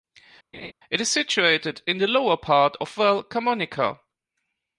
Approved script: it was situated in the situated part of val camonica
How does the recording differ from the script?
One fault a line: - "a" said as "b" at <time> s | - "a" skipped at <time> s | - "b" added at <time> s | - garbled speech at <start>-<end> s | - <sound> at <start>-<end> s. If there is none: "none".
- laugh at 0.5-0.7 s
- "was" said as "is" at 1.0 s
- "situated" said as "lower" at 2.1 s